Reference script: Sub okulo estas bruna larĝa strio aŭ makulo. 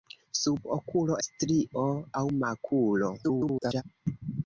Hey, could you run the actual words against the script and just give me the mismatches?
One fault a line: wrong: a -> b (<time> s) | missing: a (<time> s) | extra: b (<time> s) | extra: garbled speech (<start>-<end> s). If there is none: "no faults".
missing: estas bruna larĝa (1.2 s)
extra: garbled speech (3.2-3.8 s)